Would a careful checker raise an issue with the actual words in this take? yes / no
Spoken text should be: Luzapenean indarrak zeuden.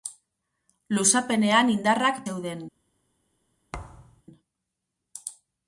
no